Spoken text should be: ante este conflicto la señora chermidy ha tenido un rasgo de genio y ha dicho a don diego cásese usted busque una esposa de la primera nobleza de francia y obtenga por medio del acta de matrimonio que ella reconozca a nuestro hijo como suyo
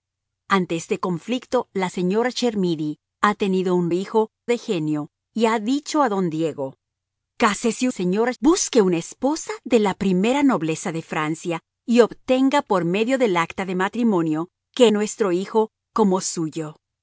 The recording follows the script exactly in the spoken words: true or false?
false